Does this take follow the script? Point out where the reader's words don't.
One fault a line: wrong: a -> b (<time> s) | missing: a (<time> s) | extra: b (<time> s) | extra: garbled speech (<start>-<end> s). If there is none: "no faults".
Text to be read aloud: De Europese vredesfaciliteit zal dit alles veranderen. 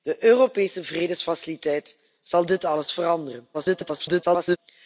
extra: garbled speech (3.5-4.6 s)